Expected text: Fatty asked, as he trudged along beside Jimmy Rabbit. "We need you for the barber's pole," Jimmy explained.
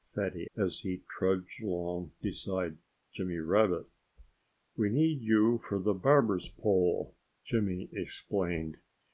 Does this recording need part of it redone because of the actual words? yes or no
yes